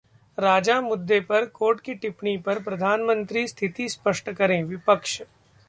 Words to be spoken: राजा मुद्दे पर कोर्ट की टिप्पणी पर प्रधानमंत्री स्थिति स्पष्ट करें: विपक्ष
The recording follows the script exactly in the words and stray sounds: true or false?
true